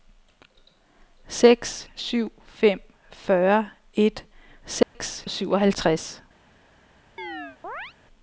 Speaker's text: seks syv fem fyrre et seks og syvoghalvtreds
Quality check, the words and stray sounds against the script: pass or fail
fail